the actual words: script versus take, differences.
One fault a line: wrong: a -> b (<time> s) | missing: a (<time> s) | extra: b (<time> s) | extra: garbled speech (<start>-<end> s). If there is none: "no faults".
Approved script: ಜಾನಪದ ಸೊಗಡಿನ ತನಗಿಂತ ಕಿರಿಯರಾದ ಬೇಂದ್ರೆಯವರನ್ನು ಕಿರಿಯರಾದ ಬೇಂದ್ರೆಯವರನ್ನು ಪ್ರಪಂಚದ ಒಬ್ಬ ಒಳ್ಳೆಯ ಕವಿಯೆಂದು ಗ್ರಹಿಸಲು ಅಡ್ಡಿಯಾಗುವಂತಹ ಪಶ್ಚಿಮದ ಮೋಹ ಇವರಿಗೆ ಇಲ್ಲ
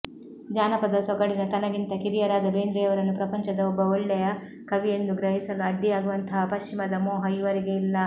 missing: ಕಿರಿಯರಾದ ಬೇಂದ್ರೆಯವರನ್ನು (3.1 s)